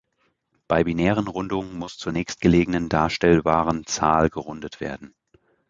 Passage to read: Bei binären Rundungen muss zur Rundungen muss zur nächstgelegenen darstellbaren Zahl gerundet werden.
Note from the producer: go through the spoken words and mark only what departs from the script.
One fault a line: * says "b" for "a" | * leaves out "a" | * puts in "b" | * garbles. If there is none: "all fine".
* leaves out "Rundungen muss zur"